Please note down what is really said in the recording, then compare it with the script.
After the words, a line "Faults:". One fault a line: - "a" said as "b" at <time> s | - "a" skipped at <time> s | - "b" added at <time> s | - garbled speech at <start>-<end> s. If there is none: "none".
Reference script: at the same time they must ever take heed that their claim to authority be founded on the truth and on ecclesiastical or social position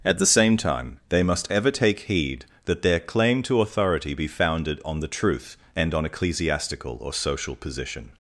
at the same time they must ever take heed that their claim to authority be founded on the truth and on ecclesiastical or social position
Faults:
none